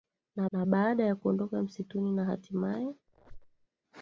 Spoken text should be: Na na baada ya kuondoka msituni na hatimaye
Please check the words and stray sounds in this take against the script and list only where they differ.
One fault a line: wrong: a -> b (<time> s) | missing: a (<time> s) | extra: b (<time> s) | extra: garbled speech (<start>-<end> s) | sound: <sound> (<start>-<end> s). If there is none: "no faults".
sound: squeak (3.1-3.7 s)